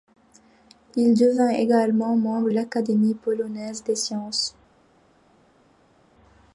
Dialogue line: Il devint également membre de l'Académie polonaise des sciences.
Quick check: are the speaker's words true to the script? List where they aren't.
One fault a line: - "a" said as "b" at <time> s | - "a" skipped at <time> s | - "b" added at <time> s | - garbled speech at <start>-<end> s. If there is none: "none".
- "de" skipped at 2.5 s